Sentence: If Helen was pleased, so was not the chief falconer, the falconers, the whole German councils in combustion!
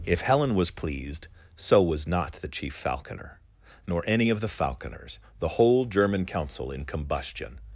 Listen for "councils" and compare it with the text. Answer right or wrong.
wrong